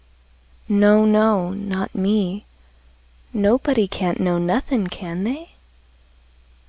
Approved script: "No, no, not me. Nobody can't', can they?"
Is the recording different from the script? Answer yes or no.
yes